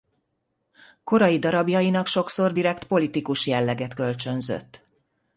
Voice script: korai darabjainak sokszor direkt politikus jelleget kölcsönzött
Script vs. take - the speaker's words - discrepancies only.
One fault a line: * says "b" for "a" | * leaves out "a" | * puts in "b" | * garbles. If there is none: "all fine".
all fine